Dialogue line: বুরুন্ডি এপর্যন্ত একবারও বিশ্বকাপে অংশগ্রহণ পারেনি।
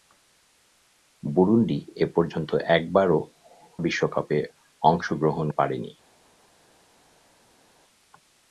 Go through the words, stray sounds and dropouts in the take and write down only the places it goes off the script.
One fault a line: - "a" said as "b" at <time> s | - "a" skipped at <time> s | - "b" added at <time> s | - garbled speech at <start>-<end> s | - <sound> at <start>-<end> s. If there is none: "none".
none